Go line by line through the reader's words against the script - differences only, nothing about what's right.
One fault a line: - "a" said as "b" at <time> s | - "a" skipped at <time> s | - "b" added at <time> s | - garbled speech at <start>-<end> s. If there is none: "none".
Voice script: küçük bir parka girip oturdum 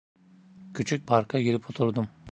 - "bir" skipped at 1.1 s